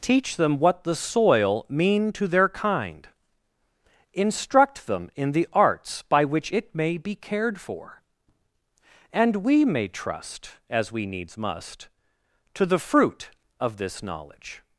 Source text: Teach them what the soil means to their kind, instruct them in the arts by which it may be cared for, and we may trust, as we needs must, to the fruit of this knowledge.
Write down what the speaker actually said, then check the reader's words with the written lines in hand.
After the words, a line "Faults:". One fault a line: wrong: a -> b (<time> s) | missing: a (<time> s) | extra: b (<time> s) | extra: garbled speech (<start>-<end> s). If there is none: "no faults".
Teach them what the soil mean to their kind, instruct them in the arts by which it may be cared for, and we may trust, as we needs must, to the fruit of this knowledge.
Faults:
wrong: means -> mean (1.7 s)